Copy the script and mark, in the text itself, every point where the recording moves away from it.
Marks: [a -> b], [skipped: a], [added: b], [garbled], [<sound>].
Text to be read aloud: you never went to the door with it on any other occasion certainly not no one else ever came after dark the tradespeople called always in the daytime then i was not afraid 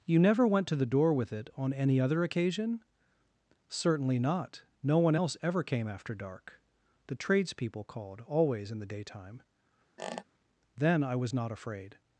you never went to the door with it on any other occasion certainly not no one else ever came after dark the tradespeople called always in the daytime [squeak] then i was not afraid